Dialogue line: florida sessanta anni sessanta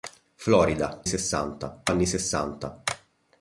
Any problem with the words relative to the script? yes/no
no